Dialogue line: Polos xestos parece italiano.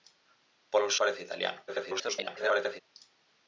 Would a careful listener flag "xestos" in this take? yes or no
yes